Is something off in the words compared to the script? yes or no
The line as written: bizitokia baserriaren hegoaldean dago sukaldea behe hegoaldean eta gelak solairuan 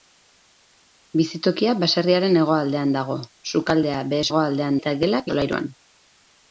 no